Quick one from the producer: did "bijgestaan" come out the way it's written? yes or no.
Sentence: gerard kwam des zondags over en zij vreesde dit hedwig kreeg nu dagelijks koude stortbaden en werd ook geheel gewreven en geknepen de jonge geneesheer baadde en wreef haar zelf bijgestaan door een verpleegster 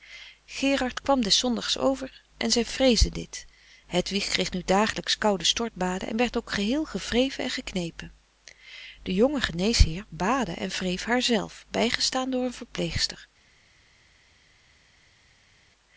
yes